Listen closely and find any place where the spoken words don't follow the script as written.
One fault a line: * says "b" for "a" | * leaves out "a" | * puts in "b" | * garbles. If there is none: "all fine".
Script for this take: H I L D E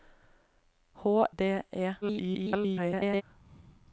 * leaves out "I L"
* garbles